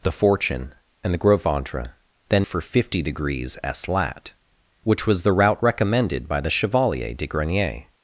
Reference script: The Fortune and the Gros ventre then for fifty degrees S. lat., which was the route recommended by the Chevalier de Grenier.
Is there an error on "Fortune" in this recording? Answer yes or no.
no